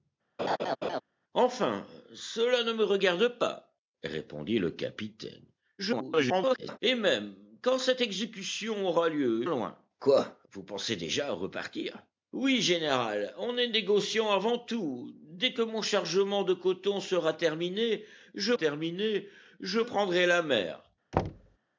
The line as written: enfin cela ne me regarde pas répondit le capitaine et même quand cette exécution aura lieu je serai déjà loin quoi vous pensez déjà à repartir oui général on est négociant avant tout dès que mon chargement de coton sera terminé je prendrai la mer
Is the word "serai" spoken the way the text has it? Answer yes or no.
no